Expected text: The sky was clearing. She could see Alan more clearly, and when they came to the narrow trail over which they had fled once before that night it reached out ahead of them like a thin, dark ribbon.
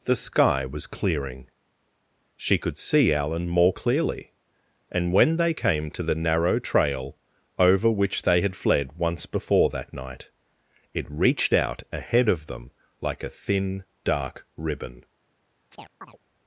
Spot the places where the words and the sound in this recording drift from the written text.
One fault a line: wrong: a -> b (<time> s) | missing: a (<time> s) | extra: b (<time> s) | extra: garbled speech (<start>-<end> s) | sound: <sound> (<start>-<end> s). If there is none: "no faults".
sound: chirp (15.7-16.2 s)